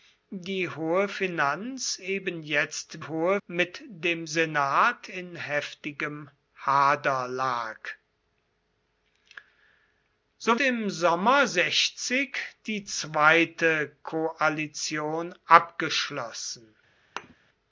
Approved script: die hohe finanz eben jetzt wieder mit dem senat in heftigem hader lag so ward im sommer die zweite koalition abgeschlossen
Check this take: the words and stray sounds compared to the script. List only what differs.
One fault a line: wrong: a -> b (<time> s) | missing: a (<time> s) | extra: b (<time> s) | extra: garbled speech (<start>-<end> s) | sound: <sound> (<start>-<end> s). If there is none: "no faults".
wrong: wieder -> hohe (3.0 s)
missing: ward (10.6 s)
sound: thud (17.2-17.4 s)